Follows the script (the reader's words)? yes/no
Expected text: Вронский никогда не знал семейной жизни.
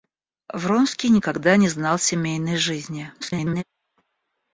no